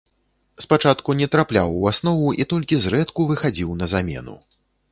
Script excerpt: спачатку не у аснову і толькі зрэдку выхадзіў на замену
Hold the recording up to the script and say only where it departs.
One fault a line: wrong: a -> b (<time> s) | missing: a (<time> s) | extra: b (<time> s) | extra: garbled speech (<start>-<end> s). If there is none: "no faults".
extra: трапляў (1.4 s)